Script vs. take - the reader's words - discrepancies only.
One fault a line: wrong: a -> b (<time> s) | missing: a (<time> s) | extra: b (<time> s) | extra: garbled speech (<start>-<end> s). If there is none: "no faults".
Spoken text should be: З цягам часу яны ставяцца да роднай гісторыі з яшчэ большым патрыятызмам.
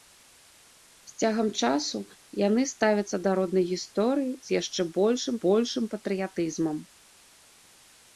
extra: большым (5.4 s)